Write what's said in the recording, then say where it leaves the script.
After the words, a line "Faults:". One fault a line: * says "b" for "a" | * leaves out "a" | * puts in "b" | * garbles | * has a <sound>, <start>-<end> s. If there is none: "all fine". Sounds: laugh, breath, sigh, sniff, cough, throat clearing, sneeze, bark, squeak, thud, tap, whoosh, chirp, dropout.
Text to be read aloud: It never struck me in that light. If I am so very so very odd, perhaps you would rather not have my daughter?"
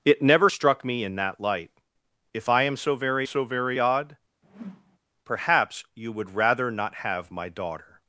It never struck me in that light. If I am so very so very odd, perhaps you would rather not have my daughter?"
Faults:
* has a whoosh, 4.4-5.0 s